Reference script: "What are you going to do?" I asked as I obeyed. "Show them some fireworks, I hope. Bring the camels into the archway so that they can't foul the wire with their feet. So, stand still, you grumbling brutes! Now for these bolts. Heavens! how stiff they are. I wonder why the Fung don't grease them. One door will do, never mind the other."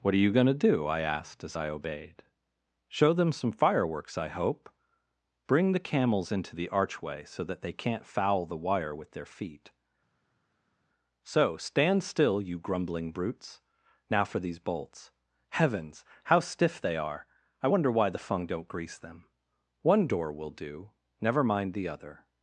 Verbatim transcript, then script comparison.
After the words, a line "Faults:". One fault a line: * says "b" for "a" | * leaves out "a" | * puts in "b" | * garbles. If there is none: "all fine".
"What are you going to do?" I asked as I obeyed. "Show them some fireworks, I hope. Bring the camels into the archway so that they can't foul the wire with their feet. So, stand still, you grumbling brutes! Now for these bolts. Heavens! how stiff they are. I wonder why the Fung don't grease them. One door will do, never mind the other."
Faults:
all fine